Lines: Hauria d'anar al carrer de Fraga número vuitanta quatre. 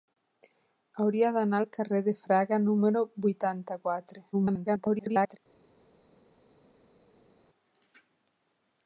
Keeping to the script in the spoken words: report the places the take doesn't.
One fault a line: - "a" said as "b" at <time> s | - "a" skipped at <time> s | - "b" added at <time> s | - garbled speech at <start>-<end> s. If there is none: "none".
- garbled speech at 4.3-5.4 s